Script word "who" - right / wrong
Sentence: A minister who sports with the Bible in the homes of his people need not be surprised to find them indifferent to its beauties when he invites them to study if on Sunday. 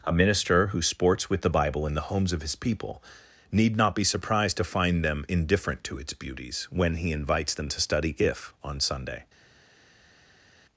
right